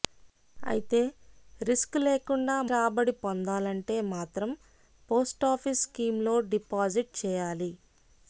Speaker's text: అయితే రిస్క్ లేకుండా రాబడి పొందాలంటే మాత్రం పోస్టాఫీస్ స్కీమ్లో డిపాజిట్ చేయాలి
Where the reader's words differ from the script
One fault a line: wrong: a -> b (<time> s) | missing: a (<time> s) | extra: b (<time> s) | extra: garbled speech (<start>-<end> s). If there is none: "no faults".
no faults